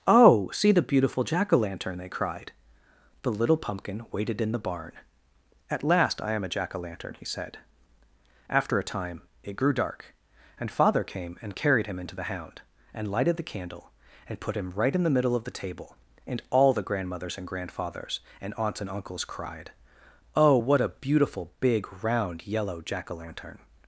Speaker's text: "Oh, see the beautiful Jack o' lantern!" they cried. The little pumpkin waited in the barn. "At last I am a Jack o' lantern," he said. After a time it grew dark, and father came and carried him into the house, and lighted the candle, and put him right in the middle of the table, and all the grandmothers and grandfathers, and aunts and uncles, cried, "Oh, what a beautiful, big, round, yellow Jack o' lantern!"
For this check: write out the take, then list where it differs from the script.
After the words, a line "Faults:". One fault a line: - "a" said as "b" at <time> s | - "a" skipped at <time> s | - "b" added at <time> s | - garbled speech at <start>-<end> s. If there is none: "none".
"Oh, see the beautiful Jack o' lantern!" they cried. The little pumpkin waited in the barn. "At last I am a Jack o' lantern," he said. After a time it grew dark, and father came and carried him into the hound, and lighted the candle, and put him right in the middle of the table, and all the grandmothers and grandfathers, and aunts and uncles, cried, "Oh, what a beautiful, big, round, yellow Jack o' lantern!"
Faults:
- "house" said as "hound" at 12.3 s